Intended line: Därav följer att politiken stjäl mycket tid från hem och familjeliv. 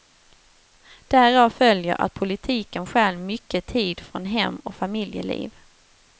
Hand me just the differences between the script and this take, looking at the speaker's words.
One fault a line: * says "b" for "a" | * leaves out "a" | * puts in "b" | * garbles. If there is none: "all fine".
all fine